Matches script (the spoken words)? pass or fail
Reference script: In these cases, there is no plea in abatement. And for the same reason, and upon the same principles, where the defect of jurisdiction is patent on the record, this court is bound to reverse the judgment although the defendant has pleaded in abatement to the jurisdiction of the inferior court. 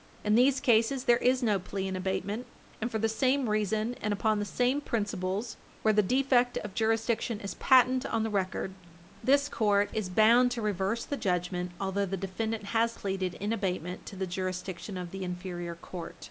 pass